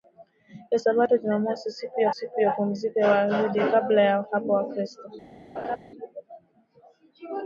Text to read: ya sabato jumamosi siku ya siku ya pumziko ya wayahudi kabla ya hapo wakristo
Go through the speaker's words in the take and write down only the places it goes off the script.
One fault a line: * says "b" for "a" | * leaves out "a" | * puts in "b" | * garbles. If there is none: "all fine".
all fine